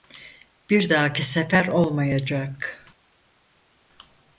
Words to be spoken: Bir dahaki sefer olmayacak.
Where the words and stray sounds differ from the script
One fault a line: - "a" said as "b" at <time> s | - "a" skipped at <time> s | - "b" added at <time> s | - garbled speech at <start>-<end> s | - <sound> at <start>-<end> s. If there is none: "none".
none